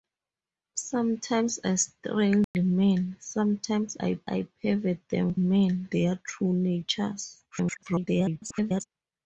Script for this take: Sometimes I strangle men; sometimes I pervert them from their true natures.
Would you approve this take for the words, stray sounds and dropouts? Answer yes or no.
no